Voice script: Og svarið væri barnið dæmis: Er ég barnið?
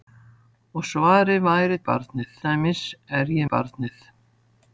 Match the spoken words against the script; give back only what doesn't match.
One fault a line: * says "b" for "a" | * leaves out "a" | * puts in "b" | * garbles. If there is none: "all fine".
all fine